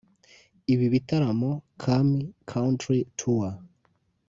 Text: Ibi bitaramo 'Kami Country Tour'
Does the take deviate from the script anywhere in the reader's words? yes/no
no